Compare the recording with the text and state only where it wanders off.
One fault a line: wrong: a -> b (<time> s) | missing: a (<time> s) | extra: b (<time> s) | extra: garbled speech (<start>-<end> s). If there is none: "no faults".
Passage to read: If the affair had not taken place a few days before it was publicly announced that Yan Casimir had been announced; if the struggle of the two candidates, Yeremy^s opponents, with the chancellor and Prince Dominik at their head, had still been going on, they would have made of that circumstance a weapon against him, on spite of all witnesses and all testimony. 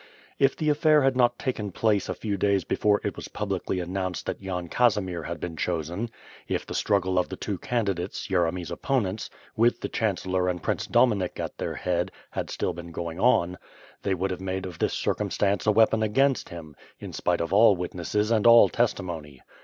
wrong: announced -> chosen (5.5 s)
wrong: that -> this (14.8 s)
wrong: on -> in (17.0 s)